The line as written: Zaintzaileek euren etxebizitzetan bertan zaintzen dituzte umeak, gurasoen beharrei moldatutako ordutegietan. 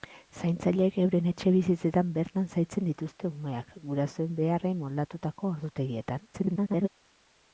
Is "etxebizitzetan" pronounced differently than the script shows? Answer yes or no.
no